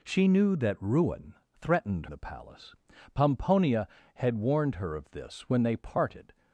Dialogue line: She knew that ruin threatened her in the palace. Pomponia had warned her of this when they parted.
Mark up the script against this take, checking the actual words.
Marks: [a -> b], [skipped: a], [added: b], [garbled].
She knew that ruin threatened [skipped: her in] the palace. Pomponia had warned her of this when they parted.